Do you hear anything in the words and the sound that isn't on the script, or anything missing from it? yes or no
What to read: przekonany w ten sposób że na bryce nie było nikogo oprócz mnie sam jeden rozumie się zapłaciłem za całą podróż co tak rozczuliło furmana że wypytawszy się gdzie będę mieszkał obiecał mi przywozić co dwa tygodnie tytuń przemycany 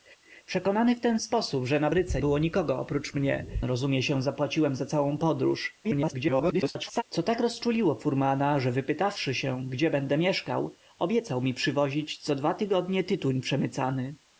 yes